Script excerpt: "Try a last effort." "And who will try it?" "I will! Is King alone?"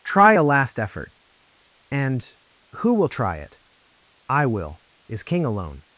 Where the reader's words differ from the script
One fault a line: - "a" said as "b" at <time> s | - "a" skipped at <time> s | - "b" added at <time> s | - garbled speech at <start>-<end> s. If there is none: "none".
none